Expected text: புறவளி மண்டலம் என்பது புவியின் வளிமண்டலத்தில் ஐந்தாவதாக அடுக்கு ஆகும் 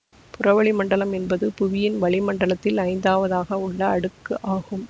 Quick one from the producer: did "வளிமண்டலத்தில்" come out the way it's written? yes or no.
yes